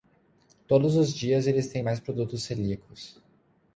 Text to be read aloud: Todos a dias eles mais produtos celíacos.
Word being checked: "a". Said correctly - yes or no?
no